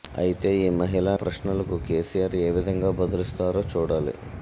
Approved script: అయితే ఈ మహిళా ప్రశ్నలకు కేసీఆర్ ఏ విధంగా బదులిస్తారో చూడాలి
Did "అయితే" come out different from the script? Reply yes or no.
no